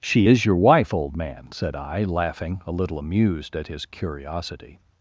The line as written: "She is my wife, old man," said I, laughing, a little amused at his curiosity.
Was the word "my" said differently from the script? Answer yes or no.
yes